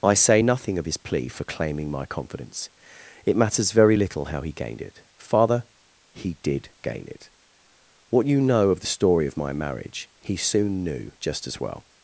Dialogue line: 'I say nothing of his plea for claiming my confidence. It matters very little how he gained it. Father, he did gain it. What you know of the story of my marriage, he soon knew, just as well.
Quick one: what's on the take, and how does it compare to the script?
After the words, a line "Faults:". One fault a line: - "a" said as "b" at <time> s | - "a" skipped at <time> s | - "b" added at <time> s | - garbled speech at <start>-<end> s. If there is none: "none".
'I say nothing of his plea for claiming my confidence. It matters very little how he gained it. Father, he did gain it. What you know of the story of my marriage, he soon knew, just as well.
Faults:
none